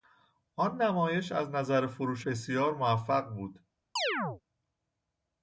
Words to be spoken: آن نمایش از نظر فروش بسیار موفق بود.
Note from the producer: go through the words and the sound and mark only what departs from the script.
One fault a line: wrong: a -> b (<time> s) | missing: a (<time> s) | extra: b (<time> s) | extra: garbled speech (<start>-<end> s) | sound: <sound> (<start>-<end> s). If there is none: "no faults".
sound: chirp (4.0-4.4 s)